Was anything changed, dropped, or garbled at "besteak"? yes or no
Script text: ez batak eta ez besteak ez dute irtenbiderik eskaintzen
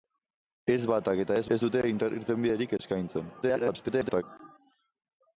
yes